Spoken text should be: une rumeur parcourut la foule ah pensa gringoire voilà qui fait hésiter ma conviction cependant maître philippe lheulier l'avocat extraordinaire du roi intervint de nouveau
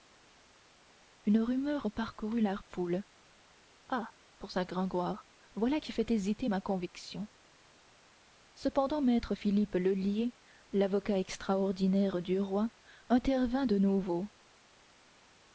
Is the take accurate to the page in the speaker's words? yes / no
yes